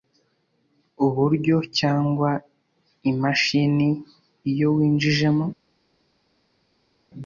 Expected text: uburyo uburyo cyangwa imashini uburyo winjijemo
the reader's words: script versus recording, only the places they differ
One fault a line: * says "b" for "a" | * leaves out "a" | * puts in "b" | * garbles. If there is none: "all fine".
* leaves out "uburyo"
* says "iyo" for "uburyo"